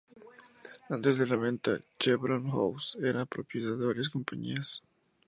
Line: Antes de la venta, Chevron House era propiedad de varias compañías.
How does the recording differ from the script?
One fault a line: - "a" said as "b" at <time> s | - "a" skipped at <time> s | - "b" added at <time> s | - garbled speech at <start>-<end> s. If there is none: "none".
none